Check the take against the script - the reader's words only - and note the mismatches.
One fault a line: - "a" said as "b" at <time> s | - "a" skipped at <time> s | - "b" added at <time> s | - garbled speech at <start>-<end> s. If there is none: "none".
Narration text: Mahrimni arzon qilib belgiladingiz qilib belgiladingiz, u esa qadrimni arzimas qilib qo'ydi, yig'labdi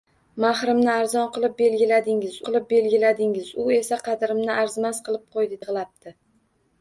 none